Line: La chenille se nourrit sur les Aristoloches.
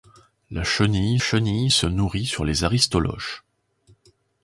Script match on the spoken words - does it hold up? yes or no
no